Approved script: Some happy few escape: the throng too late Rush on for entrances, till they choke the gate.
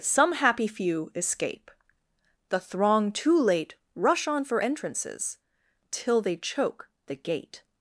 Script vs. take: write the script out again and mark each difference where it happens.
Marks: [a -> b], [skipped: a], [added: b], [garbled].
Some happy few escape: the throng too late Rush on for entrances, till they choke the gate.